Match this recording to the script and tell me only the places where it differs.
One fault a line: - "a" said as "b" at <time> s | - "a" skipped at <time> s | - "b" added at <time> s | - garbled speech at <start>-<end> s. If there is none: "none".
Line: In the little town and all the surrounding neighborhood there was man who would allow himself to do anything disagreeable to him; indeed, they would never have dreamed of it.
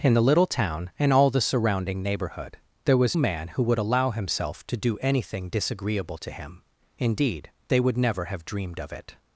none